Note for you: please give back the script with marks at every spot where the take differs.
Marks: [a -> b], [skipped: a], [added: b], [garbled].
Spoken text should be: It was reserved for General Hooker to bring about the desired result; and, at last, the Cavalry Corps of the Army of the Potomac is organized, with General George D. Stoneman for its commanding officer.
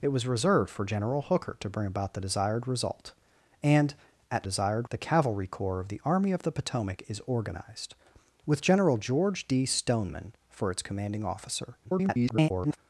It was reserved for General Hooker to bring about the desired result; and, at [last, -> desired] the Cavalry Corps of the Army of the Potomac is organized, with General George D. Stoneman for its commanding officer. [garbled]